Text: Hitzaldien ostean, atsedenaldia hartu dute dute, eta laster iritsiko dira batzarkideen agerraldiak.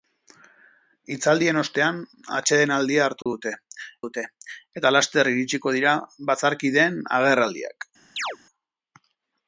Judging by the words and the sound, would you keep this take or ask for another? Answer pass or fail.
fail